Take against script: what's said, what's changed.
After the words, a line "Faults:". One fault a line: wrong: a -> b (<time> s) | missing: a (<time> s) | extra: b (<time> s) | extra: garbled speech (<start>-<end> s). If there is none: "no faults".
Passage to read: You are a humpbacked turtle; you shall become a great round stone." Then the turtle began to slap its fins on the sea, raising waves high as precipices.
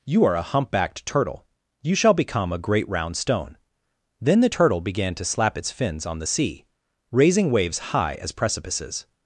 You are a humpbacked turtle; you shall become a great round stone." Then the turtle began to slap its fins on the sea, raising waves high as precipices.
Faults:
no faults